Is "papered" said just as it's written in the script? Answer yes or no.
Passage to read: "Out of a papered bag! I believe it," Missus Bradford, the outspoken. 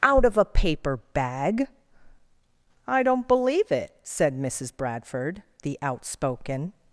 no